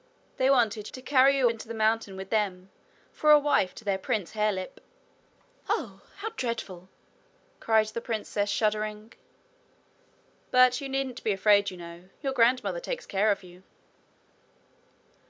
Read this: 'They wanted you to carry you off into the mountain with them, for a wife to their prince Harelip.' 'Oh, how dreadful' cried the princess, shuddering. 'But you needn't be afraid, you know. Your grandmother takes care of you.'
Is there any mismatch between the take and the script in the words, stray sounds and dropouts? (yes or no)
yes